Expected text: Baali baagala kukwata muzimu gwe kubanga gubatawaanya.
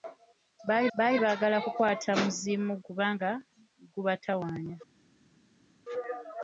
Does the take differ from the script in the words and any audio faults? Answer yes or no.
yes